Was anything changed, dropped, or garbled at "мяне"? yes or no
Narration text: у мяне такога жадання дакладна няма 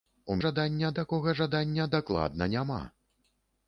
yes